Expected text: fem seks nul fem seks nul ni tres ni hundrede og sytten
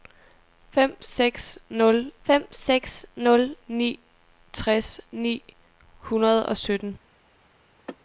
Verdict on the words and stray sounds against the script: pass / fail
fail